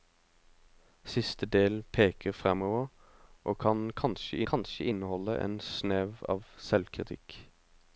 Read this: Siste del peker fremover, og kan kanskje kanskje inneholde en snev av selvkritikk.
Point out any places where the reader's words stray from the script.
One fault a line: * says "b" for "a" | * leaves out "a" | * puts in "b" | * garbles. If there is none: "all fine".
all fine